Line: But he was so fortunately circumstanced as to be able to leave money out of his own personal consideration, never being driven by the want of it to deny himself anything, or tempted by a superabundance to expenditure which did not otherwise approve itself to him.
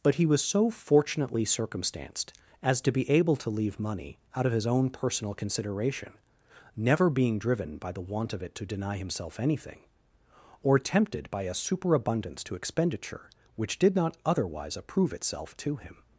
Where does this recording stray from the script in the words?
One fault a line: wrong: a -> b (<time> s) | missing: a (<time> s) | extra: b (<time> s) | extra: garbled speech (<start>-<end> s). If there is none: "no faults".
no faults